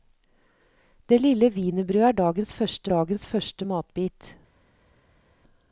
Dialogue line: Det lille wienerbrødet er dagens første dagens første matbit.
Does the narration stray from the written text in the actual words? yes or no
no